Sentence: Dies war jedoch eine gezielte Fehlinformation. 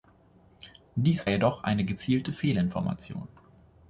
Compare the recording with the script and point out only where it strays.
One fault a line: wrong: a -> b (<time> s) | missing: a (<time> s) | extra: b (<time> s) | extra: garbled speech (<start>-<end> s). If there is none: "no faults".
missing: war (1.3 s)